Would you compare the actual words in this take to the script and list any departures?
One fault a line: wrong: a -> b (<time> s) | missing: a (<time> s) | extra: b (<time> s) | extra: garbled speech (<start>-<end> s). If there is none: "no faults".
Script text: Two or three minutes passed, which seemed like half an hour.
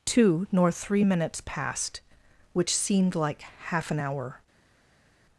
wrong: or -> nor (0.5 s)